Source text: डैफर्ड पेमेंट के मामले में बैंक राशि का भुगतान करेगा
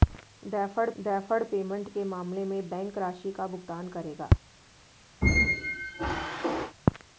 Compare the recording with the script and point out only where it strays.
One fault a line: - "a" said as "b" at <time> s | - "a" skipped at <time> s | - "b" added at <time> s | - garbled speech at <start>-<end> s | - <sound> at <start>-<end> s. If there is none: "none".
- "डैफर्ड" added at 1.0 s
- squeak at 5.2-6.8 s